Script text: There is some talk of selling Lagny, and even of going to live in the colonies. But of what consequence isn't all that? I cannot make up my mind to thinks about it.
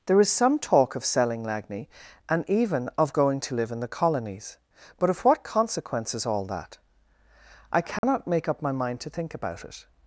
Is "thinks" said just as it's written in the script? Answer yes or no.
no